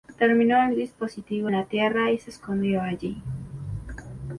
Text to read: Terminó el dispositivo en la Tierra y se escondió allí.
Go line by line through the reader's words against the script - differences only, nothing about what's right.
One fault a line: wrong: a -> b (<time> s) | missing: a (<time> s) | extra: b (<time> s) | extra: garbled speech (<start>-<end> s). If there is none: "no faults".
missing: en (1.5 s)